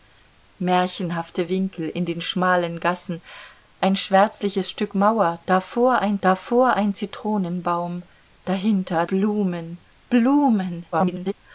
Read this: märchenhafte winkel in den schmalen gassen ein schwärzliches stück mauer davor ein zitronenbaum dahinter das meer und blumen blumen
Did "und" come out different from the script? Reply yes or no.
yes